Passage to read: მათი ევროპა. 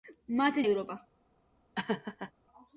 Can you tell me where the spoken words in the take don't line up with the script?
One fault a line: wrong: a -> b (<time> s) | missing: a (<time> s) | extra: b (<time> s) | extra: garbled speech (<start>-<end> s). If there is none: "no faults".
no faults